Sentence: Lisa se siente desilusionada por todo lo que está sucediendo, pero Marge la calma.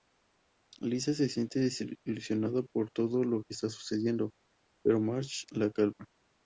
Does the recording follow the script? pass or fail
pass